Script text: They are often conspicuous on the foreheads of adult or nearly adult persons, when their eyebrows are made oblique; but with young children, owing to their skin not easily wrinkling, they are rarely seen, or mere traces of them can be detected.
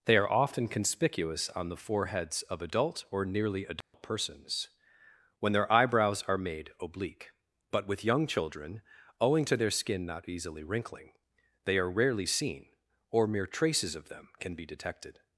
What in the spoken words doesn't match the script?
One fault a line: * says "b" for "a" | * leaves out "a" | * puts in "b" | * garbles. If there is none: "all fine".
all fine